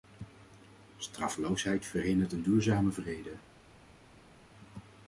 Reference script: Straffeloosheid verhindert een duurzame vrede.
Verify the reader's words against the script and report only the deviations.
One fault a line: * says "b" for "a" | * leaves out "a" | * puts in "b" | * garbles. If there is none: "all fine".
all fine